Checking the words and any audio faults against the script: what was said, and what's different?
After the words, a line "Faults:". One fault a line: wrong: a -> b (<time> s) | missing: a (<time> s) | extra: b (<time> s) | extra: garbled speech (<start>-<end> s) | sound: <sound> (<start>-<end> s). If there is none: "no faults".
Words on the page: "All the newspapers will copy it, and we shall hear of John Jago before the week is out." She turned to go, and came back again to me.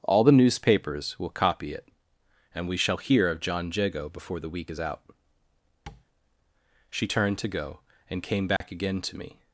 "All the newspapers will copy it, and we shall hear of John Jago before the week is out." She turned to go, and came back again to me.
Faults:
sound: tap (5.9-6.1 s)
sound: dropout (8.6-8.6 s)